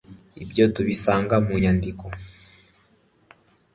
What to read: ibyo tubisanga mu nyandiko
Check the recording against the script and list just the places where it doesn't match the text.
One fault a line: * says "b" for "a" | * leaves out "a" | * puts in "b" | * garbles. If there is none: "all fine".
all fine